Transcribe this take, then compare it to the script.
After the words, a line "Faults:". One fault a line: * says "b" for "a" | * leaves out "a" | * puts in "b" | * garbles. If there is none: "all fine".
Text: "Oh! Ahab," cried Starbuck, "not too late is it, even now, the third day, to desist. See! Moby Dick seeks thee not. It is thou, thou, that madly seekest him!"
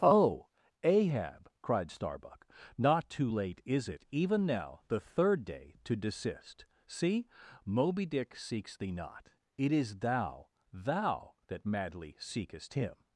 "Oh! Ahab," cried Starbuck, "not too late is it, even now, the third day, to desist. See! Moby Dick seeks thee not. It is thou, thou, that madly seekest him!"
Faults:
all fine